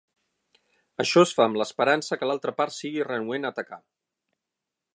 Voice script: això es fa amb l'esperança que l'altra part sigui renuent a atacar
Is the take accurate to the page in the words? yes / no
yes